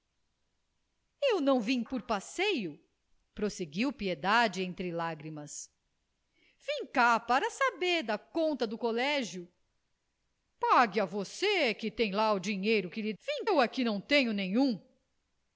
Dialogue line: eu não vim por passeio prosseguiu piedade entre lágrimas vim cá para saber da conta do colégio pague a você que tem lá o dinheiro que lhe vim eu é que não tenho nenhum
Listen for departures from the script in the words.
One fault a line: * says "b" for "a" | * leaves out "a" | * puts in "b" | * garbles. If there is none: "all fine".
all fine